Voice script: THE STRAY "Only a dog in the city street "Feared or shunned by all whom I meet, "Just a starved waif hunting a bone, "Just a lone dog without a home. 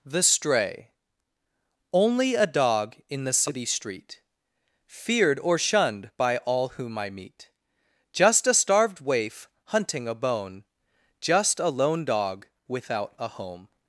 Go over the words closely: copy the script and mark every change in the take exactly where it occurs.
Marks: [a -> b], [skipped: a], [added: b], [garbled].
THE STRAY "Only a dog in the city street "Feared or shunned by all whom I meet, "Just a starved waif hunting a bone, "Just a lone dog without a home.